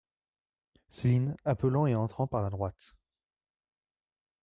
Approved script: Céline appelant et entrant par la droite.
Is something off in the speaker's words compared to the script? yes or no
no